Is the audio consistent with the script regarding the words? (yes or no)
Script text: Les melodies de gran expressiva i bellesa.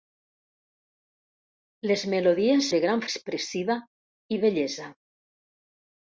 yes